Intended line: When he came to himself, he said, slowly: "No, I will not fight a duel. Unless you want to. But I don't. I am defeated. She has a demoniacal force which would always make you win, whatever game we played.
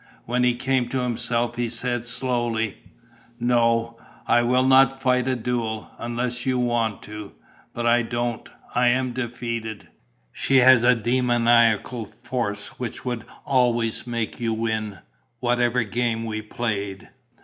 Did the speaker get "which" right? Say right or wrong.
right